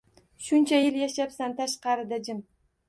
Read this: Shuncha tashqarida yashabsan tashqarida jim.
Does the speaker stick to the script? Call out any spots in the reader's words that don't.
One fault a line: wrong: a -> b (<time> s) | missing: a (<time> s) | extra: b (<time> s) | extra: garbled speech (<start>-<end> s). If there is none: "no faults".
wrong: tashqarida -> yil (0.8 s)